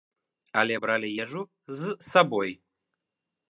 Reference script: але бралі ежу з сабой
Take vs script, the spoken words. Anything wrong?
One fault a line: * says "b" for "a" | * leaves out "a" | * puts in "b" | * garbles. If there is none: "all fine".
all fine